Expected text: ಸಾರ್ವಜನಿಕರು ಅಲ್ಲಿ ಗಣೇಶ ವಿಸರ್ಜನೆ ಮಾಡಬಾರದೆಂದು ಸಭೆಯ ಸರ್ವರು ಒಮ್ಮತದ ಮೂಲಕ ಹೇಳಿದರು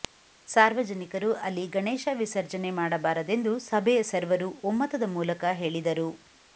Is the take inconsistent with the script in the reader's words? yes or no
no